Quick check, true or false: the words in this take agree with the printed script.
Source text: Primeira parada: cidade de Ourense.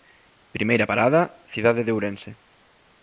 true